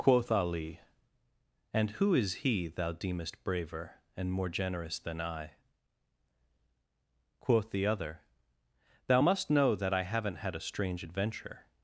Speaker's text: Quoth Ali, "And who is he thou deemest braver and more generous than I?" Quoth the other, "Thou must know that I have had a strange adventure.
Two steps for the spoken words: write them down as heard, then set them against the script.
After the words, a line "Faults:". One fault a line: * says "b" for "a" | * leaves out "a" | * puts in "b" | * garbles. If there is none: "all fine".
Quoth Ali, "And who is he thou deemest braver and more generous than I?" Quoth the other, "Thou must know that I haven't had a strange adventure.
Faults:
* says "haven't" for "have"